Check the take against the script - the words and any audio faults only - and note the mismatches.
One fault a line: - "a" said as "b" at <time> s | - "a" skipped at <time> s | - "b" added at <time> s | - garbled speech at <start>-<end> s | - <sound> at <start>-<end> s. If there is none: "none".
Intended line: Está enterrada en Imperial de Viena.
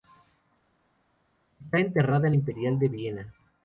none